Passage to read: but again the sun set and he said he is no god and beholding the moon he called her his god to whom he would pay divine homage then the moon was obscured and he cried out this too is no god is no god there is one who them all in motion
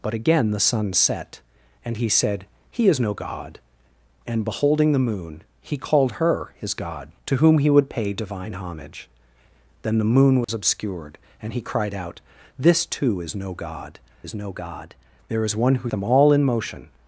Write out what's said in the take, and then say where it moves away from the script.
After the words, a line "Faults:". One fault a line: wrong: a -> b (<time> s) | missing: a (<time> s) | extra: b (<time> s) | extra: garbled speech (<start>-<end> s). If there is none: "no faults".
but again the sun set and he said he is no god and beholding the moon he called her his god to whom he would pay divine homage then the moon was obscured and he cried out this too is no god is no god there is one who them all in motion
Faults:
no faults